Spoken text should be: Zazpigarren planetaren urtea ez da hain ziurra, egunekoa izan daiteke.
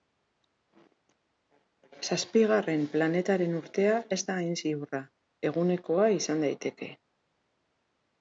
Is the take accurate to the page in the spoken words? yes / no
yes